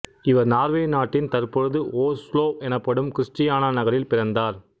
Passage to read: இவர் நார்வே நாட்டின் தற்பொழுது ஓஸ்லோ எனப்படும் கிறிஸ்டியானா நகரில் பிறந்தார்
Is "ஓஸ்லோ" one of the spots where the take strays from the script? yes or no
no